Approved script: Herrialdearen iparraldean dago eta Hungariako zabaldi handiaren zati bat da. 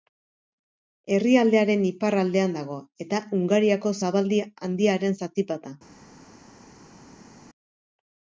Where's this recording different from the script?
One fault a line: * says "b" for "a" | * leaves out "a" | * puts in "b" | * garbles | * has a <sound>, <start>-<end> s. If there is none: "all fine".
all fine